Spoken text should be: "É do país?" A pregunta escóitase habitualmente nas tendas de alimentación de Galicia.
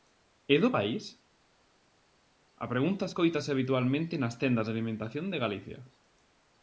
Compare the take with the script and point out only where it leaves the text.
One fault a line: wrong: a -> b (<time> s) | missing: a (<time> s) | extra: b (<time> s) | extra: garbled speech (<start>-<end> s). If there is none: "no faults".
no faults